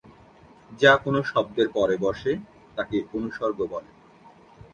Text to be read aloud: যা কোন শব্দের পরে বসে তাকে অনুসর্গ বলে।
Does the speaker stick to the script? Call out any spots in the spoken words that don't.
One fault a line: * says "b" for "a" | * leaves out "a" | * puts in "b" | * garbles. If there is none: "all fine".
all fine